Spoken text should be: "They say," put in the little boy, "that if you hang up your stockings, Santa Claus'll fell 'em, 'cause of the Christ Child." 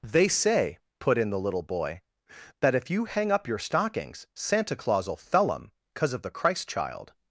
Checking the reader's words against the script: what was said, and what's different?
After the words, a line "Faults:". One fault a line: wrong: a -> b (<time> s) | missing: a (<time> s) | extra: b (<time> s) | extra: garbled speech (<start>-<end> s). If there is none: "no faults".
"They say," put in the little boy, "that if you hang up your stockings, Santa Claus'll fell 'em, 'cause of the Christ Child."
Faults:
no faults